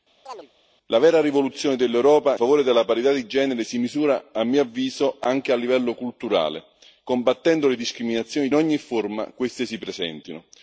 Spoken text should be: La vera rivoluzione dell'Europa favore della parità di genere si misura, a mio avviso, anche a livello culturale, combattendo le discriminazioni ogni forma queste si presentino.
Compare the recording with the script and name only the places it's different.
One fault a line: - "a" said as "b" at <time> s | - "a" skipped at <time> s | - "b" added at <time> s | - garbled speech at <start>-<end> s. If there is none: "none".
none